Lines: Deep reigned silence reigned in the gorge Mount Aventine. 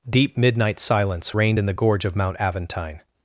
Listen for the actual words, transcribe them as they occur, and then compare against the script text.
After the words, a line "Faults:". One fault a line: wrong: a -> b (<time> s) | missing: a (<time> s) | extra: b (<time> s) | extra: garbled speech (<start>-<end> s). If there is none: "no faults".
Deep midnight silence reigned in the gorge of Mount Aventine.
Faults:
wrong: reigned -> midnight (0.3 s)
extra: of (2.0 s)